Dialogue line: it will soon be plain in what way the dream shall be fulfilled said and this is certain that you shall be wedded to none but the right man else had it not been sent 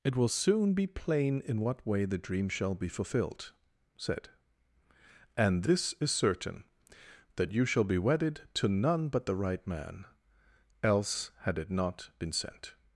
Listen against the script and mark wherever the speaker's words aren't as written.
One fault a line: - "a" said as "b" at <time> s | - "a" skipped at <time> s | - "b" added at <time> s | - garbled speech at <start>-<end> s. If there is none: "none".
none